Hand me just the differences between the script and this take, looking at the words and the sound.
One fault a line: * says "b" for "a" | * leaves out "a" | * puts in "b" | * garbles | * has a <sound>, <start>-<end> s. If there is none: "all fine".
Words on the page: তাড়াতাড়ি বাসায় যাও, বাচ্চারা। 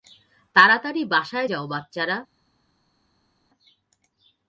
all fine